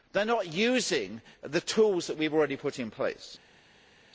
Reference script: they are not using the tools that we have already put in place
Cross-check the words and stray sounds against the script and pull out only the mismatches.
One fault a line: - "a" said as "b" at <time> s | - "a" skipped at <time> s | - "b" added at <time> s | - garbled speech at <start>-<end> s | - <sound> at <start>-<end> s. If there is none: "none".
none